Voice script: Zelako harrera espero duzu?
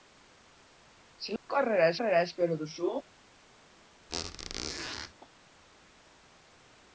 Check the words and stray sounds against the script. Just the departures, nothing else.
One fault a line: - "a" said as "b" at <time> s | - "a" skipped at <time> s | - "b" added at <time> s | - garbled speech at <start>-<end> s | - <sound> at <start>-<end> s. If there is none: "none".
- dropout at 1.4-1.5 s
- "harrera" added at 2.0 s
- squeak at 4.1-5.1 s